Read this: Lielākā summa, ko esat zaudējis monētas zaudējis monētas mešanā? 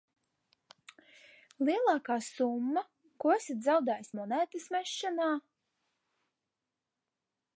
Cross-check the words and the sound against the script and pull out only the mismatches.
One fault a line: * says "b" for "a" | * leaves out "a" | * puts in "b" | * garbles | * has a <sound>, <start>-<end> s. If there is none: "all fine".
* leaves out "zaudējis monētas"